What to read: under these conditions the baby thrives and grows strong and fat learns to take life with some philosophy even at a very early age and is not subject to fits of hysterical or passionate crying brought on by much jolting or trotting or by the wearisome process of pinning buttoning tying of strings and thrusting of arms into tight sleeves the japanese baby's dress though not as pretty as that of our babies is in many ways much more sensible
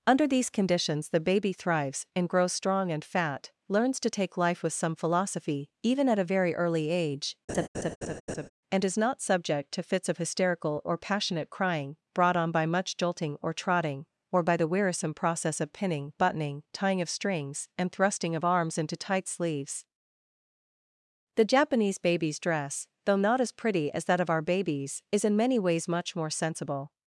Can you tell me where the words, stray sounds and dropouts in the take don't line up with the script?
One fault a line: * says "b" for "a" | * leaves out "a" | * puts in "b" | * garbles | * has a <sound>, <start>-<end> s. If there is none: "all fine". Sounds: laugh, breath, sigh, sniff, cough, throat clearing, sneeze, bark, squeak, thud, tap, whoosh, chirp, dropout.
* has a laugh, 7.5-8.5 s